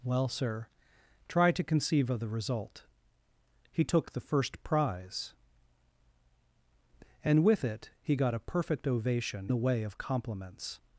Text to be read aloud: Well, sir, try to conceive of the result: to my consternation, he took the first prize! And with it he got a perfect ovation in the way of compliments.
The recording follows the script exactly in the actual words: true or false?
false